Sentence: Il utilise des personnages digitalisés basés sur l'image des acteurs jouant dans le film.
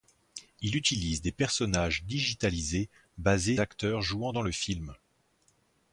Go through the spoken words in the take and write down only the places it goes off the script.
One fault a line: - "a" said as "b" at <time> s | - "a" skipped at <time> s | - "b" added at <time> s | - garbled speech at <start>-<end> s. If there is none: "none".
- "sur l'image des" skipped at 3.6 s